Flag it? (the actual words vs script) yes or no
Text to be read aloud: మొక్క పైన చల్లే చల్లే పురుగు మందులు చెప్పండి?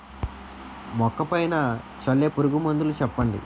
yes